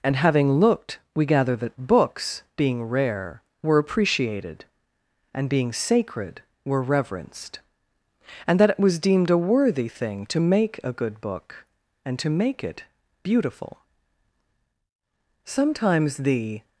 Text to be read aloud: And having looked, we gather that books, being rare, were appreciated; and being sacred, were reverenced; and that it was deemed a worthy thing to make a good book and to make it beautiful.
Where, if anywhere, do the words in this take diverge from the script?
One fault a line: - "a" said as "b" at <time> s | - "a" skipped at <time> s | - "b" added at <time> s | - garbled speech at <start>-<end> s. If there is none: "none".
- "Sometimes the" added at 15.4 s